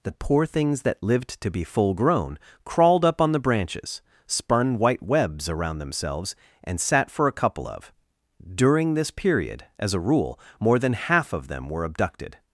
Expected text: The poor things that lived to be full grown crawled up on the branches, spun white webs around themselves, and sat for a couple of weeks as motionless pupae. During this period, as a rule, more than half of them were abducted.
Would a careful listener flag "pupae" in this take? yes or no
yes